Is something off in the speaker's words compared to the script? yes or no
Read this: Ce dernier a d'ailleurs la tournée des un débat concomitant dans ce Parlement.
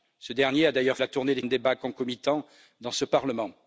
no